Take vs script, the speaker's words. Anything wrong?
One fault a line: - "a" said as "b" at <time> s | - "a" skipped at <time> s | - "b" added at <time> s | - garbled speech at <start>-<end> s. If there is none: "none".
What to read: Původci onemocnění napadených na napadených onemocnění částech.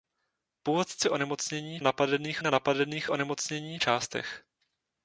none